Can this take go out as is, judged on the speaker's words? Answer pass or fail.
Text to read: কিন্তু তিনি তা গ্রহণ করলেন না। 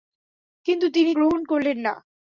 fail